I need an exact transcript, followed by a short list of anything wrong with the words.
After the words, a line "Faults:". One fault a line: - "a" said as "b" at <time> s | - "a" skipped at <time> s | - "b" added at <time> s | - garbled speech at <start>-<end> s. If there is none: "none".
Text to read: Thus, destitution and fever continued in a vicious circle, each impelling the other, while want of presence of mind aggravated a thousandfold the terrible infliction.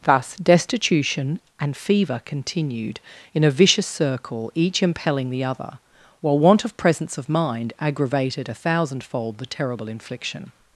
Thus, destitution and fever continued in a vicious circle, each impelling the other, while want of presence of mind aggravated a thousandfold the terrible infliction.
Faults:
none